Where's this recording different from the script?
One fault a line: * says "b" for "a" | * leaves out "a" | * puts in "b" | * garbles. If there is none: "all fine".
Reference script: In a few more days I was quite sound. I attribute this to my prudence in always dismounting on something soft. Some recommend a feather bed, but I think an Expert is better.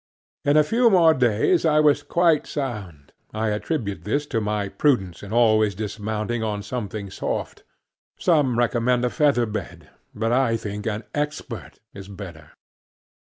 all fine